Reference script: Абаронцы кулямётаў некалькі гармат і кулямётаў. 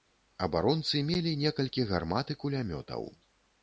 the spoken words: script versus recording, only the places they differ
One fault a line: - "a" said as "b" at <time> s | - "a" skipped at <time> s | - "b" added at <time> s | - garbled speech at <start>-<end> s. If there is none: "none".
- "кулямётаў" said as "мелі" at 1.1 s